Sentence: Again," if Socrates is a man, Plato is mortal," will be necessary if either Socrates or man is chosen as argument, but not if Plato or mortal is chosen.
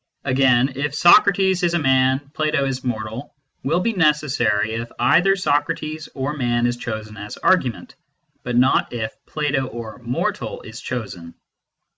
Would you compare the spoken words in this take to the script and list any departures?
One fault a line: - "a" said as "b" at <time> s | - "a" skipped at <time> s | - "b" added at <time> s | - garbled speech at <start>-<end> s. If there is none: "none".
none